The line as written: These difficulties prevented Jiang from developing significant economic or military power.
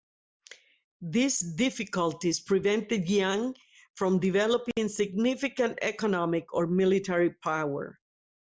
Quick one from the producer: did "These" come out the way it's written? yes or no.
yes